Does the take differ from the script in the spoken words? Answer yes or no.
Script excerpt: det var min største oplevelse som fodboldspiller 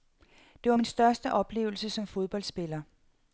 no